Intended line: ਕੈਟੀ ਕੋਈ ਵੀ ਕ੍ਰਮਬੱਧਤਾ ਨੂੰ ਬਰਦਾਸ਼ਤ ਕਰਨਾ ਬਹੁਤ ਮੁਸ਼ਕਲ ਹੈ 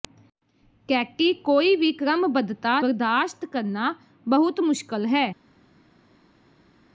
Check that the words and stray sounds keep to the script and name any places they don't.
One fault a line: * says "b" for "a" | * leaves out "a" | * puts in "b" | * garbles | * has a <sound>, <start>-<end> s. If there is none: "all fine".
* leaves out "ਨੂੰ"